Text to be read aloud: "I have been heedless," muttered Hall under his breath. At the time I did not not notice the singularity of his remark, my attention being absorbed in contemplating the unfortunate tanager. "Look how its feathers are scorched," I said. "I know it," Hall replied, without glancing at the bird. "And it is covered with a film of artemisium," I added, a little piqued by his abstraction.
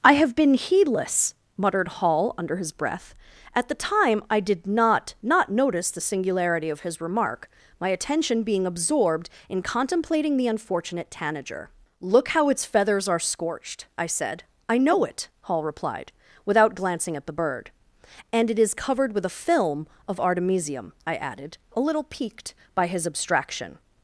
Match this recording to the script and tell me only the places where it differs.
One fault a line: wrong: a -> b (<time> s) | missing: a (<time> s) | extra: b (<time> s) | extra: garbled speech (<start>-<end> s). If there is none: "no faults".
no faults